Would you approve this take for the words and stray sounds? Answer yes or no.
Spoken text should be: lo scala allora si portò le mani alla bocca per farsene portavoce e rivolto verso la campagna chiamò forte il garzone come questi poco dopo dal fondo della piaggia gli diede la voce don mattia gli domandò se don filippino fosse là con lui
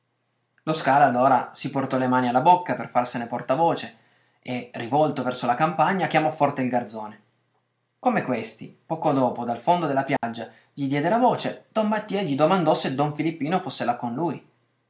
no